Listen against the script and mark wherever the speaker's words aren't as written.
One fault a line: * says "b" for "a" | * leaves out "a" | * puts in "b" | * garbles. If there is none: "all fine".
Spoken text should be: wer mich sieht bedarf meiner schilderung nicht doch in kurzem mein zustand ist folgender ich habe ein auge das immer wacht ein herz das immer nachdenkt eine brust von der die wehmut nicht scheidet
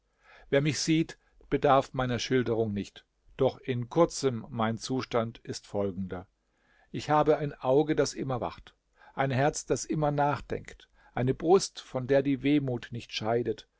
all fine